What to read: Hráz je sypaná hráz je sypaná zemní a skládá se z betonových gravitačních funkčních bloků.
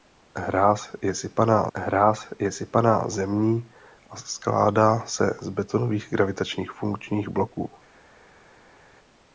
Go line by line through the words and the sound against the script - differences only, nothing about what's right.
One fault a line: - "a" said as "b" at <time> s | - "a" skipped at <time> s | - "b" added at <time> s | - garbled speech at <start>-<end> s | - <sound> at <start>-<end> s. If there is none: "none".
none